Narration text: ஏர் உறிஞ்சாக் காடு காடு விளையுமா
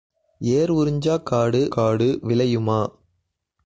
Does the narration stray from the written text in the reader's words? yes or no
no